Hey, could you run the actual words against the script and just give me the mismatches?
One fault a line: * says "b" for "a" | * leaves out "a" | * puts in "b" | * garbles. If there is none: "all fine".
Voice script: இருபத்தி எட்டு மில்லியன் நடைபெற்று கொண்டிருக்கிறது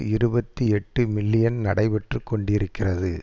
all fine